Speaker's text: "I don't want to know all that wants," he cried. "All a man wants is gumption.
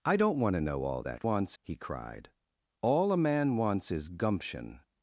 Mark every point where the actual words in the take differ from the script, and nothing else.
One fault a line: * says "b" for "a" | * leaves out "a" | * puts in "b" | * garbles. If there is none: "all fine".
all fine